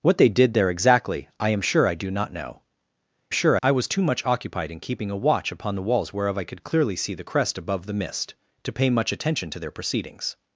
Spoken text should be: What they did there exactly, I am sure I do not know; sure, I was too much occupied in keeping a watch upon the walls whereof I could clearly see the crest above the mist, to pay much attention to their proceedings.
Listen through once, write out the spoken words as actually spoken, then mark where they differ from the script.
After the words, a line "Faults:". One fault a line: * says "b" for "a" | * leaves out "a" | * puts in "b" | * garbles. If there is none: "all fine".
What they did there exactly, I am sure I do not know; sure, I was too much occupied in keeping a watch upon the walls whereof I could clearly see the crest above the mist, to pay much attention to their proceedings.
Faults:
all fine